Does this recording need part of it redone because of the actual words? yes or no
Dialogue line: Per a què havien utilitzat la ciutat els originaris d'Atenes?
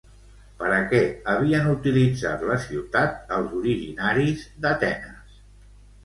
no